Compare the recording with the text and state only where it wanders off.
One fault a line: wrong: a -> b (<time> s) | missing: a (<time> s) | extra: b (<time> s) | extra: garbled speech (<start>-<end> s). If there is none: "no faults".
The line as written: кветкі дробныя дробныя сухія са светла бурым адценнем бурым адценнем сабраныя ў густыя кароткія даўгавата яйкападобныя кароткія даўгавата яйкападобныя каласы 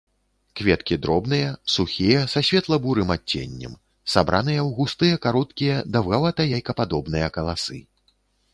missing: дробныя (1.5 s)
missing: бурым адценнем (3.8 s)
missing: кароткія даўгавата яйкападобныя (7.3 s)